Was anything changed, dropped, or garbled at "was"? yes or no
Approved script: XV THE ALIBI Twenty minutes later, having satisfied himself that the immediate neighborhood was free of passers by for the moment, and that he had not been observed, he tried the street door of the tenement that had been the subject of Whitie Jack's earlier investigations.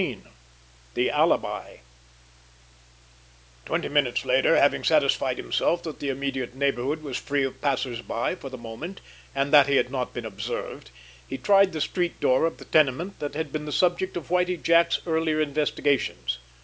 no